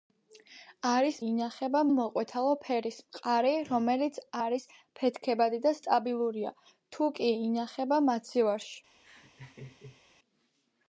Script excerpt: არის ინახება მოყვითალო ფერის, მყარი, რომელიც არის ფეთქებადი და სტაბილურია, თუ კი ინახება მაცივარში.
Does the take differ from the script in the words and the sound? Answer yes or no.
yes